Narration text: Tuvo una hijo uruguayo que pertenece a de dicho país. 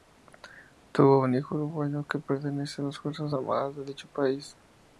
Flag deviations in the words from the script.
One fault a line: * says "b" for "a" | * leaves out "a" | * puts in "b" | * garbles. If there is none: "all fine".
* says "un" for "una"
* puts in "las Fuerzas Armadas"